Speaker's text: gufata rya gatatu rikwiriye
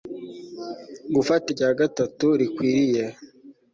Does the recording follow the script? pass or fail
pass